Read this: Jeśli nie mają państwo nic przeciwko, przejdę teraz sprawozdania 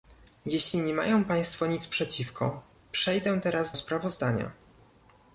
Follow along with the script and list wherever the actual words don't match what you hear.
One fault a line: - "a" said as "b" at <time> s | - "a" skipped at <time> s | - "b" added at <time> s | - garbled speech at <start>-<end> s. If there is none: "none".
none